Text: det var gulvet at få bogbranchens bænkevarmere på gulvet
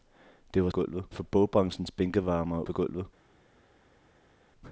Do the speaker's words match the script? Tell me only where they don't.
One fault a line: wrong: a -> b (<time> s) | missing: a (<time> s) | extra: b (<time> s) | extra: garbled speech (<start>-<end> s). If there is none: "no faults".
no faults